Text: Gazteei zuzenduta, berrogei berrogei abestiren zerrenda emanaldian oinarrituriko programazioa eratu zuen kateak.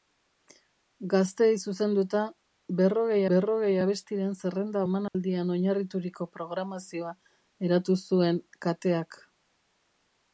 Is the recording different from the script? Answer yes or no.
no